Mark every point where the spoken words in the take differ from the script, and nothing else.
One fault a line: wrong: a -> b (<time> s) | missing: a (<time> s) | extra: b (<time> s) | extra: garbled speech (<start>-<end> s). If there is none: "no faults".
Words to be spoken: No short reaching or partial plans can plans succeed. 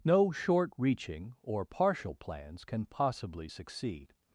wrong: plans -> possibly (2.9 s)